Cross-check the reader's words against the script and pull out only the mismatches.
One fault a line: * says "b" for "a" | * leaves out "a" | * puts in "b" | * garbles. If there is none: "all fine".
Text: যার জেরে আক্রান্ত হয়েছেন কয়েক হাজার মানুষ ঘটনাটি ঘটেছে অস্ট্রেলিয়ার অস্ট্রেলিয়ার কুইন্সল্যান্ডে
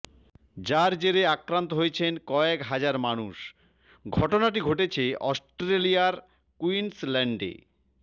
* leaves out "অস্ট্রেলিয়ার"